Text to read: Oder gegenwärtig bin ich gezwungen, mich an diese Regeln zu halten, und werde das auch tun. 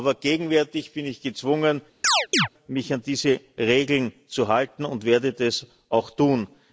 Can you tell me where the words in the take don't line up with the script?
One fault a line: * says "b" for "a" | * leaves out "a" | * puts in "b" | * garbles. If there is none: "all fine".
* says "Aber" for "Oder"